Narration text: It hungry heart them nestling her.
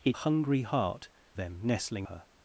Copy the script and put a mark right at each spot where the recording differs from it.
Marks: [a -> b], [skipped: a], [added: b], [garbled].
It hungry heart them nestling her.